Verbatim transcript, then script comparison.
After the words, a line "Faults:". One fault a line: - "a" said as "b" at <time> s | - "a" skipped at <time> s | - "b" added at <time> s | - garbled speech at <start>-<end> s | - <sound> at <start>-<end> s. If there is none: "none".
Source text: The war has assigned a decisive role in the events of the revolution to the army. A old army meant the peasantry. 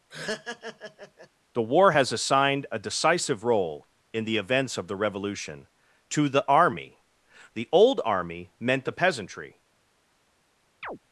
The war has assigned a decisive role in the events of the revolution to the army. The old army meant the peasantry.
Faults:
- laugh at 0.1-1.3 s
- "A" said as "The" at 7.5 s
- chirp at 10.8-11.0 s